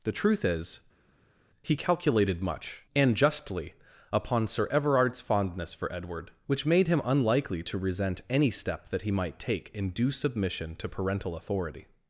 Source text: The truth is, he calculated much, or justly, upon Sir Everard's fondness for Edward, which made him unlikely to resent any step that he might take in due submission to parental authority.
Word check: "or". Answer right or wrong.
wrong